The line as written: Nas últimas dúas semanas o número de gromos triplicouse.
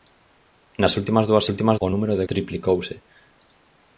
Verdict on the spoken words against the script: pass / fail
fail